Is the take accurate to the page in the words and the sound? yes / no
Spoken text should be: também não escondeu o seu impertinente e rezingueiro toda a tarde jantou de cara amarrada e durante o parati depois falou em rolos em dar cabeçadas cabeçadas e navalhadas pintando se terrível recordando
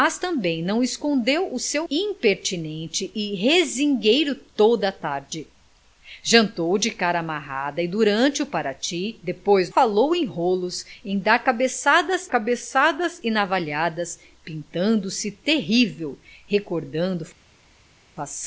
yes